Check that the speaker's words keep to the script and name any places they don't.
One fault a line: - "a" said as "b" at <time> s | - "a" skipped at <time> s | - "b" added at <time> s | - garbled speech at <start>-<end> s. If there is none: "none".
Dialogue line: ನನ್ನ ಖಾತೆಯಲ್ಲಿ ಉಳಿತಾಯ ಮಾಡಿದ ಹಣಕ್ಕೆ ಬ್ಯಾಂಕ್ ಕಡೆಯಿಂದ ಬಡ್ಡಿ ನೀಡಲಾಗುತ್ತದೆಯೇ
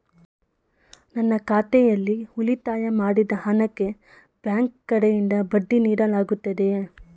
none